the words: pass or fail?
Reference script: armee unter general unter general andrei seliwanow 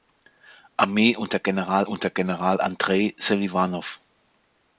pass